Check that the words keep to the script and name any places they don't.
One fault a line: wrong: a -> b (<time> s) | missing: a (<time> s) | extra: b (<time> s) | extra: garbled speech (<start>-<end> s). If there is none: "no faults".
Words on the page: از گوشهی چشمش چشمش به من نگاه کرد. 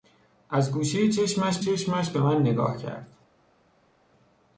no faults